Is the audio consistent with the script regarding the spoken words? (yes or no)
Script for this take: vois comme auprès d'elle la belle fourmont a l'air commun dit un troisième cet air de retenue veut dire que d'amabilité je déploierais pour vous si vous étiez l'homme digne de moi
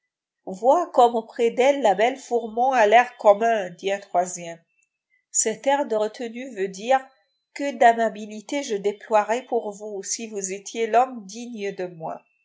yes